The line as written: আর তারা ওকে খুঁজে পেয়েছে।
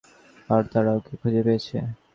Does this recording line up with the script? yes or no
yes